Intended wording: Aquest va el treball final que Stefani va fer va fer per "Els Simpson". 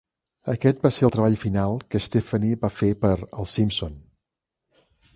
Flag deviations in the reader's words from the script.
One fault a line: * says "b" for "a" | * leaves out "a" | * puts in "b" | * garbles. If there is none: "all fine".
* puts in "ser"
* leaves out "va fer"